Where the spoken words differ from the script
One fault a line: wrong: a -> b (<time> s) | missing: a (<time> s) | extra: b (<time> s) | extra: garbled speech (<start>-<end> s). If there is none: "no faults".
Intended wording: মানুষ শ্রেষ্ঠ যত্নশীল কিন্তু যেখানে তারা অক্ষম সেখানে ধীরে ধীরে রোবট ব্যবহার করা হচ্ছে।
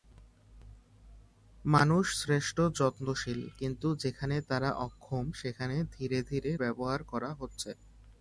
missing: রোবট (6.5 s)